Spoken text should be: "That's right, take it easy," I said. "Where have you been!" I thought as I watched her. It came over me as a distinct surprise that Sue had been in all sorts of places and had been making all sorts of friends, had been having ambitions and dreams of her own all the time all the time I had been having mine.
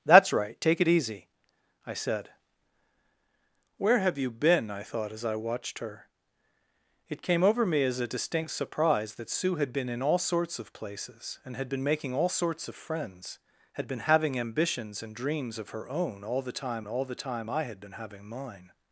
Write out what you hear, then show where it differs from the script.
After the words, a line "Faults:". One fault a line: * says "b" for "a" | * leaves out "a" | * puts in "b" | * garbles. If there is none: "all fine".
"That's right, take it easy," I said. "Where have you been!" I thought as I watched her. It came over me as a distinct surprise that Sue had been in all sorts of places and had been making all sorts of friends, had been having ambitions and dreams of her own all the time all the time I had been having mine.
Faults:
all fine